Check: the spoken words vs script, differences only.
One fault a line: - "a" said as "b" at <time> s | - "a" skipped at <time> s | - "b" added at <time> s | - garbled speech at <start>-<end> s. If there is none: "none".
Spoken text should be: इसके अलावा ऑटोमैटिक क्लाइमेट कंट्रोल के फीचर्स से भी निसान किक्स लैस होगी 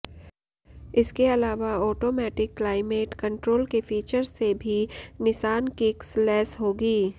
none